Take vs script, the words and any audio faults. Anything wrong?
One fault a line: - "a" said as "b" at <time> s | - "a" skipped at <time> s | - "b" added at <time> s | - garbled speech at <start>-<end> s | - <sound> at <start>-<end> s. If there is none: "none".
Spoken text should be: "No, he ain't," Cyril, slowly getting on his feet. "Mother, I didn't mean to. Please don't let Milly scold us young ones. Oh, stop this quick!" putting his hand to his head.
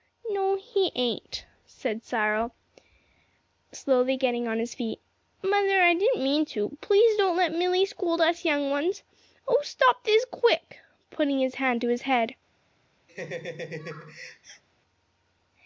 - "said" added at 1.7 s
- laugh at 13.1-14.6 s